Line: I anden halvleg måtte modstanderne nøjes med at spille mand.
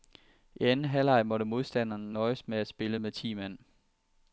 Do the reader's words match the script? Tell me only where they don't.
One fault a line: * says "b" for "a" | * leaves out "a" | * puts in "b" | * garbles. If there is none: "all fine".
* puts in "med ti"